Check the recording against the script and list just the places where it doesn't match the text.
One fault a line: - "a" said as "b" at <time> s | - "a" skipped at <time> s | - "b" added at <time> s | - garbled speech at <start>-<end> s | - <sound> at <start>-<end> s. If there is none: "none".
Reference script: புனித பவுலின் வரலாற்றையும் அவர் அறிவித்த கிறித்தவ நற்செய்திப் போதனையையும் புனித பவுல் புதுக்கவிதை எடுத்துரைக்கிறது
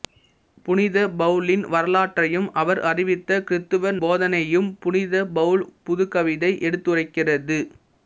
- "நற்செய்திப்" skipped at 3.9 s